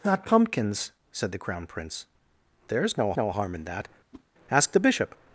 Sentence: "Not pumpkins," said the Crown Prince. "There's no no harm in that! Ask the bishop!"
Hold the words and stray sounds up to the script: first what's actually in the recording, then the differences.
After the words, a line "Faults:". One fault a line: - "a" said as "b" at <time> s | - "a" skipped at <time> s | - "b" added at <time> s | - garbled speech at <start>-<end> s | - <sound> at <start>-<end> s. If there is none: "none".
"Not pumpkins," said the Crown Prince. "There's no no harm in that! Ask the bishop!"
Faults:
- whoosh at 4.1-4.2 s